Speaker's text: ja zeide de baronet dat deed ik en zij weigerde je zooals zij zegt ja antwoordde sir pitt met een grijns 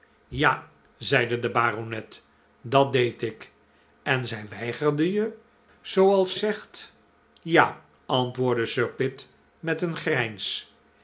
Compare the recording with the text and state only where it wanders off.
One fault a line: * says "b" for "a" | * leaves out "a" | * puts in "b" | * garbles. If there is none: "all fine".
* leaves out "zij"